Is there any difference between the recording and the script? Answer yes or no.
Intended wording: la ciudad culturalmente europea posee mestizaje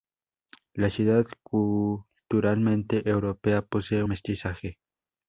no